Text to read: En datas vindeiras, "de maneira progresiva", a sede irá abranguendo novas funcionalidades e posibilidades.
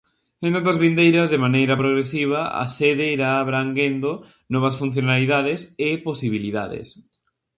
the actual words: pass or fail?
pass